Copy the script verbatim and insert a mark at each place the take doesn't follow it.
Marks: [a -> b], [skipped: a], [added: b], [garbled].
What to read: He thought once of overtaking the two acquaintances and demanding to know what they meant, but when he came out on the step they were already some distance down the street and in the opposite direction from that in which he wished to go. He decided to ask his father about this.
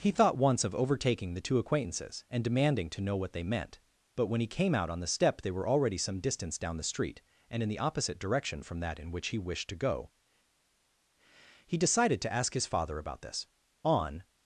He thought once of overtaking the two acquaintances and demanding to know what they meant, but when he came out on the step they were already some distance down the street and in the opposite direction from that in which he wished to go. He decided to ask his father about this. [added: On]